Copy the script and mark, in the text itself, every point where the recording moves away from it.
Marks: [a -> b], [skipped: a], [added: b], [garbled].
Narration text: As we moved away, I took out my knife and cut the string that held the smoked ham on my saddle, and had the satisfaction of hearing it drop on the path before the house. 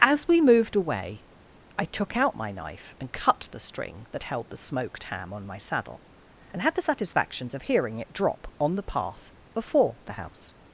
As we moved away, I took out my knife and cut the string that held the smoked ham on my saddle, and had the [satisfaction -> satisfactions] of hearing it drop on the path before the house.